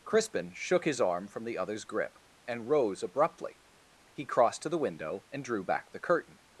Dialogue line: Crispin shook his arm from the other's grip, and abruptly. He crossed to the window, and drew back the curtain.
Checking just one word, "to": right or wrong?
right